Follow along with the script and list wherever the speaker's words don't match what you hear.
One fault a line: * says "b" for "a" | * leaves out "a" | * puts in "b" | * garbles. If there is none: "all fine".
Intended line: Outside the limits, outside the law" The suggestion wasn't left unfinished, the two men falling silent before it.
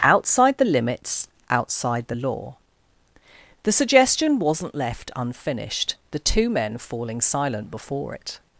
all fine